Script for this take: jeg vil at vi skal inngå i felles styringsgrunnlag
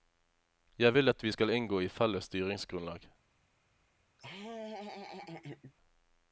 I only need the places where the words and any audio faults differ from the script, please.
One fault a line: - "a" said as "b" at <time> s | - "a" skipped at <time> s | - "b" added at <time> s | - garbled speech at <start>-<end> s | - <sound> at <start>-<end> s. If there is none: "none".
- laugh at 4.2-5.7 s